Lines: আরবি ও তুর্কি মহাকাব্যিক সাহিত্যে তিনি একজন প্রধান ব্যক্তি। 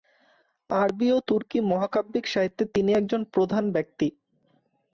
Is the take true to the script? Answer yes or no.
yes